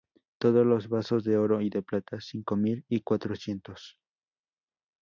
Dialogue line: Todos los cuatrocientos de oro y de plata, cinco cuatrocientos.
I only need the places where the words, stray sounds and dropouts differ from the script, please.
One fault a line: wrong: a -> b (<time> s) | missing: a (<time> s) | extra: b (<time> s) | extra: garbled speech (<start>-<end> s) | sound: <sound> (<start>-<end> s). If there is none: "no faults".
wrong: cuatrocientos -> vasos (0.9 s)
extra: mil y (2.5 s)